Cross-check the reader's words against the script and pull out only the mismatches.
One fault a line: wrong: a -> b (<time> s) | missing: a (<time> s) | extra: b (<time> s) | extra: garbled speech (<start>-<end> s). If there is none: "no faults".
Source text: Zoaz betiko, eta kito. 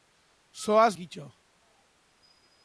missing: betiko eta (0.9 s)